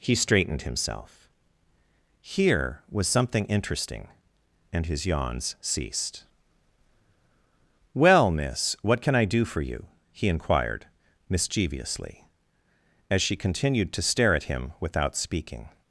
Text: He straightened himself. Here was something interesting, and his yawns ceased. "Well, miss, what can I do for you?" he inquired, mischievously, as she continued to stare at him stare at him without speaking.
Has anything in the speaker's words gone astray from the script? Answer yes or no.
yes